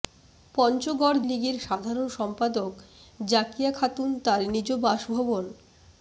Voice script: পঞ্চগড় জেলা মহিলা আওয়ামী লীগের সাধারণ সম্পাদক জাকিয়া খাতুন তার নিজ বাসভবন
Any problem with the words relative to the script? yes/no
yes